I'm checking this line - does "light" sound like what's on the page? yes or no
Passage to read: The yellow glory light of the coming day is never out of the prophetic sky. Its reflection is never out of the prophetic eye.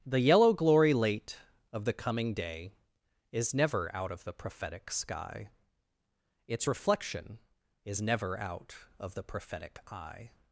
no